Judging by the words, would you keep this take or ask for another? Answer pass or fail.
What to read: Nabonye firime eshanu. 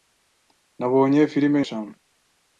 pass